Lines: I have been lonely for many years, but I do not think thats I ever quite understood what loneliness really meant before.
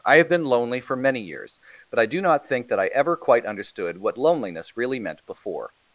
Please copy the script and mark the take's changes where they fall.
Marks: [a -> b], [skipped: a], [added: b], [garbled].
I have been lonely for many years, but I do not think [thats -> that] I ever quite understood what loneliness really meant before.